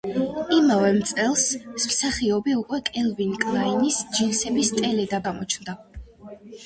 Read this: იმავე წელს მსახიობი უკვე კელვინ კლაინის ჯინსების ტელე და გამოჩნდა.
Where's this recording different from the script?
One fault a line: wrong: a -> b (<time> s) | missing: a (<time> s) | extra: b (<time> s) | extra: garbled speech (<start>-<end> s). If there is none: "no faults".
no faults